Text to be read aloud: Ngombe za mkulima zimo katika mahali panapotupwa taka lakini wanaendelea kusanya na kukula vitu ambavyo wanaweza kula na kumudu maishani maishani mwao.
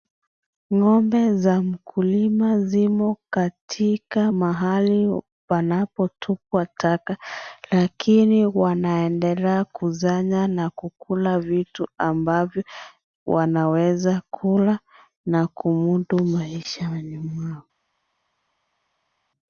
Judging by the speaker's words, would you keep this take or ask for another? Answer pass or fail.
fail